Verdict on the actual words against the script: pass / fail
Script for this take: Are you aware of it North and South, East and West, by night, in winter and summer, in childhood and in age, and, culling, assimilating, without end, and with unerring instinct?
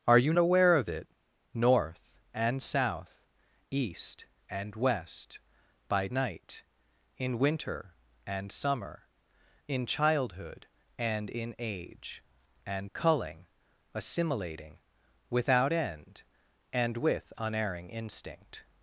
pass